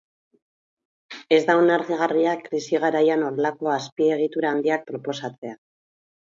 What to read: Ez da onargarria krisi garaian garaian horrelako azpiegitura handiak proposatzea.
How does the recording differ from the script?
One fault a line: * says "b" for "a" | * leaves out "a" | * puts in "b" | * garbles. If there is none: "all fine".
* leaves out "garaian"